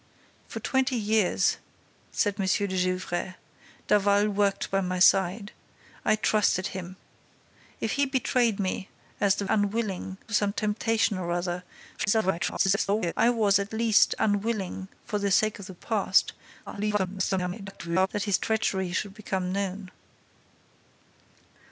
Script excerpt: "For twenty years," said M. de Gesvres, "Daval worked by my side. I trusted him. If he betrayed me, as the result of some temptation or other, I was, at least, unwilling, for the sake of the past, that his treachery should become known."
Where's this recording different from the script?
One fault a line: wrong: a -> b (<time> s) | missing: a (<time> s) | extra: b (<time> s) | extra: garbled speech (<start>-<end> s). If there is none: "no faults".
wrong: result -> unwilling (9.5 s)
extra: garbled speech (12.0-13.1 s)
extra: garbled speech (16.7-18.1 s)